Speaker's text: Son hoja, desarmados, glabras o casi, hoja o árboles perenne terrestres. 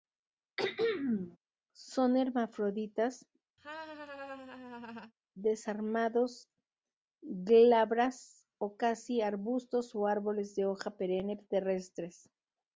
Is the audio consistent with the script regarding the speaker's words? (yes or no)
no